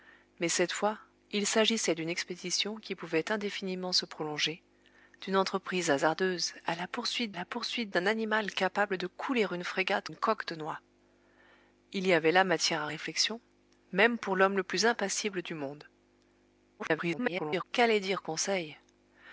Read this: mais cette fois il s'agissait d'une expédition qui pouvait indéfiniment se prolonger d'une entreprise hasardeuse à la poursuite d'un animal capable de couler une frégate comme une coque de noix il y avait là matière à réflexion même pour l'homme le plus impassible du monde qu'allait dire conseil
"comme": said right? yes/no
no